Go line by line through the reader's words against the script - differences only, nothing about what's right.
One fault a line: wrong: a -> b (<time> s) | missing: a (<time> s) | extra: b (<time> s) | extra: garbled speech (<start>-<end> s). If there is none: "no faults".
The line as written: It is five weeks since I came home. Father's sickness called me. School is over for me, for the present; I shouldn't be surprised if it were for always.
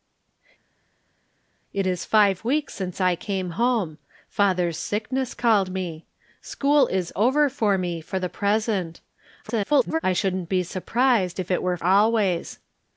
extra: garbled speech (9.4-10.0 s)
missing: for (11.8 s)